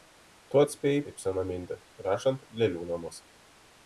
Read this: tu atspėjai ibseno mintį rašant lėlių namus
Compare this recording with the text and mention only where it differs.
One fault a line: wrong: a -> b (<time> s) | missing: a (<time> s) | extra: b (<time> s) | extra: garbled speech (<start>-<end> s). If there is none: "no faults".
no faults